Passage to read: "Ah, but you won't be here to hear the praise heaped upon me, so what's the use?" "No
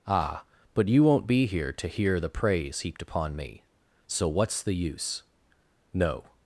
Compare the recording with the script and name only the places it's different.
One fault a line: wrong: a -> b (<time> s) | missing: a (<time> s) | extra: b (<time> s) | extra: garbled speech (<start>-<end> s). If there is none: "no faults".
no faults